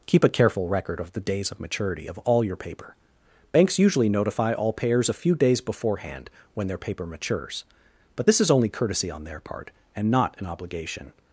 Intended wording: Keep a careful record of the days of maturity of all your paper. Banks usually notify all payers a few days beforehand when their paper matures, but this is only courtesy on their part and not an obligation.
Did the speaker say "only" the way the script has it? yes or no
yes